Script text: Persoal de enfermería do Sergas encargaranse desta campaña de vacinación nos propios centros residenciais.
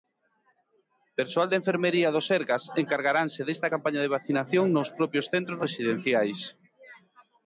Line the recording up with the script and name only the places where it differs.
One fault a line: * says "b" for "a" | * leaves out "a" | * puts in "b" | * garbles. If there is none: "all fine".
all fine